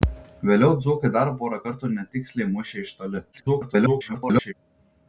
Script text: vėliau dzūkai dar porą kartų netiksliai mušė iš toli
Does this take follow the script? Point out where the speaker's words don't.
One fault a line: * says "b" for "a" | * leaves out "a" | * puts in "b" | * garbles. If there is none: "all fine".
* garbles